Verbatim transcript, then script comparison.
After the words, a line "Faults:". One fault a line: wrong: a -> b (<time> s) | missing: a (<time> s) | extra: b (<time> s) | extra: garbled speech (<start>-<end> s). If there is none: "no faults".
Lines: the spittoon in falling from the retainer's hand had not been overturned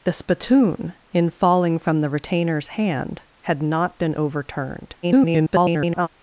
the spittoon in falling from the retainer's hand had not been overturned [garbled]
Faults:
extra: garbled speech (5.0-6.1 s)